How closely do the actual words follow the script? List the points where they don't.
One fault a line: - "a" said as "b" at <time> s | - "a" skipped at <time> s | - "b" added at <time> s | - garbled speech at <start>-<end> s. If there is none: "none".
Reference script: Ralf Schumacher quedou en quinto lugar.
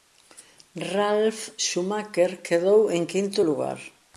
none